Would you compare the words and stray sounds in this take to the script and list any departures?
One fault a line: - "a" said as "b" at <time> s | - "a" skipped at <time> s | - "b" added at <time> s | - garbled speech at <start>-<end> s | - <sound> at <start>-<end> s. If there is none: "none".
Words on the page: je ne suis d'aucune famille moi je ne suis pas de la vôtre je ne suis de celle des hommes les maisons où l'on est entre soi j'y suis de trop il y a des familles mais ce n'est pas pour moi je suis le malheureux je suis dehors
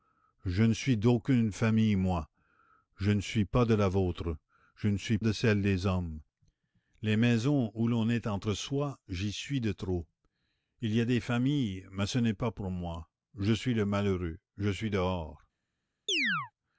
- chirp at 16.1-16.5 s